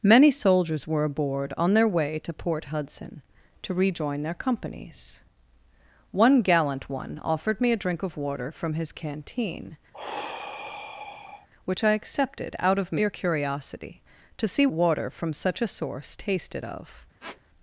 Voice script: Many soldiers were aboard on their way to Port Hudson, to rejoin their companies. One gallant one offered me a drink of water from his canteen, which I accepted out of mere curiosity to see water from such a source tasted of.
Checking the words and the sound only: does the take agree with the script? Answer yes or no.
no